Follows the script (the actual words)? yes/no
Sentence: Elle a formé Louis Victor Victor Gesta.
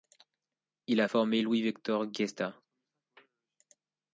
no